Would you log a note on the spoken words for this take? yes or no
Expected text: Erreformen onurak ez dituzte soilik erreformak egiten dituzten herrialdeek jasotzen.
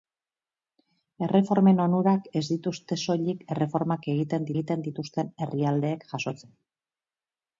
yes